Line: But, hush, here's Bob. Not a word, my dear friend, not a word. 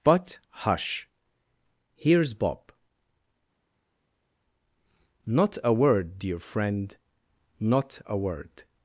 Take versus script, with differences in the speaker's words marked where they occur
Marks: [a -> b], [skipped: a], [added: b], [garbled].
But, hush, here's Bob. Not a word, [skipped: my] dear friend, not a word.